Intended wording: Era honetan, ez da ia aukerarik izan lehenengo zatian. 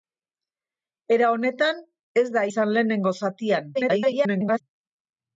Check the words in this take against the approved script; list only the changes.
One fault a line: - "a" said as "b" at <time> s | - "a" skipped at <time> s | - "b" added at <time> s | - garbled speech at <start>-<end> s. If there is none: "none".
- "ia aukerarik" skipped at 2.4 s
- garbled speech at 3.7-4.6 s